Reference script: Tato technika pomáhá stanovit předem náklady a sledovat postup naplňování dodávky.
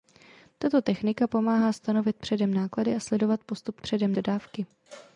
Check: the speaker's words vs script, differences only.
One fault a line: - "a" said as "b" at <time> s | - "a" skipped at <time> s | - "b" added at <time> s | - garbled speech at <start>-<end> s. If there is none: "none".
- "naplňování" said as "předem" at 3.8 s